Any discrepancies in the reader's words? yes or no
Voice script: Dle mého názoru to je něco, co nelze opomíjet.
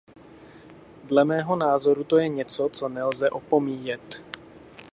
no